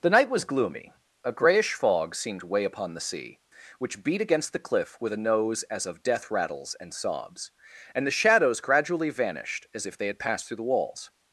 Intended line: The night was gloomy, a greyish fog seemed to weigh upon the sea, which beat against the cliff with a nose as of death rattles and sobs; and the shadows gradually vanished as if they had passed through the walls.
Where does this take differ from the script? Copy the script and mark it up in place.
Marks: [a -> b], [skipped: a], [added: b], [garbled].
The night was gloomy, a greyish fog seemed to weigh upon the sea, which beat against the cliff with a nose as of death rattles and sobs; and the shadows gradually vanished as if they had passed through the walls.